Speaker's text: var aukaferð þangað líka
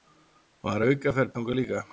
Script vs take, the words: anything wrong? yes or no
no